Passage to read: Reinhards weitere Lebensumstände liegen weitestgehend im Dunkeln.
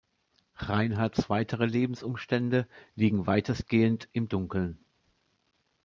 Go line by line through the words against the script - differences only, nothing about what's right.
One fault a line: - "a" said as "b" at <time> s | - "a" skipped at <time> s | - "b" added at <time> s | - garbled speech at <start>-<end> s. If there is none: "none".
none